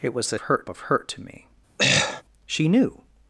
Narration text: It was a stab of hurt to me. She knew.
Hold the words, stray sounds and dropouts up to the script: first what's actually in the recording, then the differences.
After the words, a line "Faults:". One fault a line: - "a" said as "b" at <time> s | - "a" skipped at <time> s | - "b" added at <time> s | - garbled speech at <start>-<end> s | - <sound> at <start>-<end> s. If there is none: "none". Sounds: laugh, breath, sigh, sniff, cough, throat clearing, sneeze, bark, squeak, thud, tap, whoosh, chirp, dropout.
It was a hurt of hurt to me. She knew.
Faults:
- "stab" said as "hurt" at 0.4 s
- throat clearing at 1.8-2.2 s